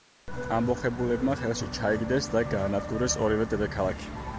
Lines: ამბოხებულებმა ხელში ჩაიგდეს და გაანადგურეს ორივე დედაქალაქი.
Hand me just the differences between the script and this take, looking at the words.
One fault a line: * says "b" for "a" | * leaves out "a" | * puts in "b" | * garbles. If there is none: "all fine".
all fine